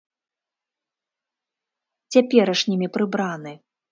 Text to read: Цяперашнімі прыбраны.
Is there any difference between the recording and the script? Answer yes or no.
no